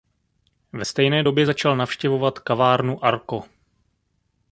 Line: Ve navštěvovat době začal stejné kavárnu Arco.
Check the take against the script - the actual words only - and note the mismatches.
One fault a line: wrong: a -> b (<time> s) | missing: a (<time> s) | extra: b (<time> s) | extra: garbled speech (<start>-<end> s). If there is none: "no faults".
wrong: navštěvovat -> stejné (0.8 s)
wrong: stejné -> navštěvovat (1.8 s)